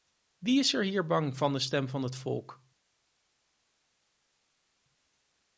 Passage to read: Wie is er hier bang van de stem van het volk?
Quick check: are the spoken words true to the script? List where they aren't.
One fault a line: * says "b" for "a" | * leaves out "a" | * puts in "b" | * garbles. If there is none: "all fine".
all fine